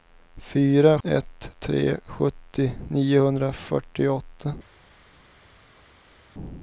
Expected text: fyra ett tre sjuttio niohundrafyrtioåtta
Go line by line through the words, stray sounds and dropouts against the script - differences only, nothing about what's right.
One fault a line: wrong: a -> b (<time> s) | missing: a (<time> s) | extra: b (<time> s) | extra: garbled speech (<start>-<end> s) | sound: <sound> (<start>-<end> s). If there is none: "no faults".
no faults